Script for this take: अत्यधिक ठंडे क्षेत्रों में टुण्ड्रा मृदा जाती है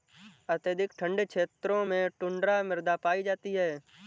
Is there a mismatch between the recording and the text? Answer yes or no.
yes